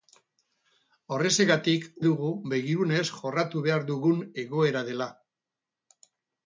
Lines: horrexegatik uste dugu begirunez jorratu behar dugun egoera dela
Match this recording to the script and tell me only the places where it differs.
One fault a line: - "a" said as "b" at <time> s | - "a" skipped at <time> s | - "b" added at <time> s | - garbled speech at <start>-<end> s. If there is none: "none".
- "uste" skipped at 1.8 s